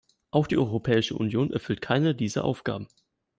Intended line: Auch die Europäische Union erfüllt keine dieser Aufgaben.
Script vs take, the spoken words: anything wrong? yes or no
no